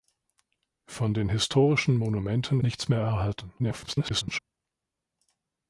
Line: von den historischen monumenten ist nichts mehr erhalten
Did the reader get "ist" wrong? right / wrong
wrong